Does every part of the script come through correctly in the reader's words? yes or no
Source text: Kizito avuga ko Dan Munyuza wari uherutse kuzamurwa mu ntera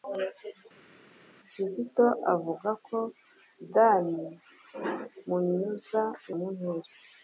no